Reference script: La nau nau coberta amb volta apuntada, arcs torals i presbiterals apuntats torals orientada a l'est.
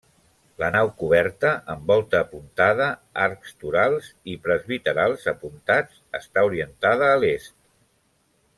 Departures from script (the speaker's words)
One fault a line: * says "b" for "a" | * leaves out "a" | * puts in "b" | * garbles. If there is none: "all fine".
* leaves out "nau"
* says "està" for "torals"